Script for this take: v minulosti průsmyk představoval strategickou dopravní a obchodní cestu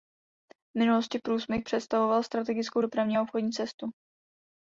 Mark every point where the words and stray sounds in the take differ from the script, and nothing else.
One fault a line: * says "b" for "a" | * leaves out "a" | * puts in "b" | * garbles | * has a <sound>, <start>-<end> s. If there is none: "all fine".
all fine